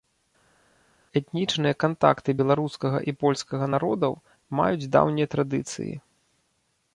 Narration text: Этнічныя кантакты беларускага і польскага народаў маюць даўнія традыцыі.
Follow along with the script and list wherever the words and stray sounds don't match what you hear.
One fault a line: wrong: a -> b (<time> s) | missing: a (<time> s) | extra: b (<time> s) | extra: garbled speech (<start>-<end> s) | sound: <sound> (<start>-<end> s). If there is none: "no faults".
no faults